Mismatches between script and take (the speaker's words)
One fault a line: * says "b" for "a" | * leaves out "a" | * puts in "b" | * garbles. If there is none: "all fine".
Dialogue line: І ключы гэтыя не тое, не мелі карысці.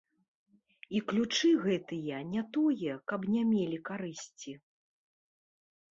* puts in "каб"